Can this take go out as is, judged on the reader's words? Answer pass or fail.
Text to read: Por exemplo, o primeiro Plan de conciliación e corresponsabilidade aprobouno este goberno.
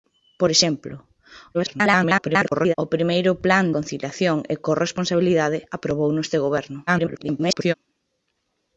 fail